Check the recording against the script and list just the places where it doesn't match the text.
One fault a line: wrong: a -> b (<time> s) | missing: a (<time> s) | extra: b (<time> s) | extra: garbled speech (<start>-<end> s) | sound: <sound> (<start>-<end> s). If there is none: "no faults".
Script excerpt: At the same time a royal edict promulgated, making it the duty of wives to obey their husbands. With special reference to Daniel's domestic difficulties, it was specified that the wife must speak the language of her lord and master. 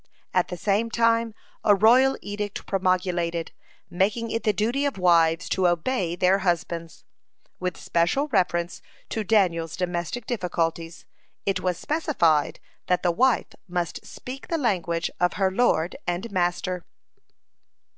no faults